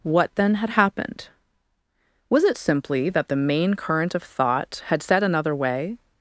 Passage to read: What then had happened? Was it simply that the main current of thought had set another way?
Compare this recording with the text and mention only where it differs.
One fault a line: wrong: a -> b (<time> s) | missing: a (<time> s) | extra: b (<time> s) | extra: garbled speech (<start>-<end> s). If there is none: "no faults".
no faults